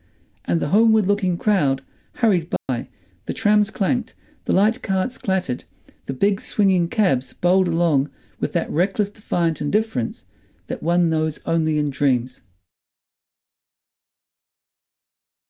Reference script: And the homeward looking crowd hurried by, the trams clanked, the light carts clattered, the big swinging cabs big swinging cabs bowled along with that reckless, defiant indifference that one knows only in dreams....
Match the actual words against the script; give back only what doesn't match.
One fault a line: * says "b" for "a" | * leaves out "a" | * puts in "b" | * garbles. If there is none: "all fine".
* leaves out "big swinging cabs"